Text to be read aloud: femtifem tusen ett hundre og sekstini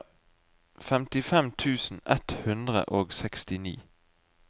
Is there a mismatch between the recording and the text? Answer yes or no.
no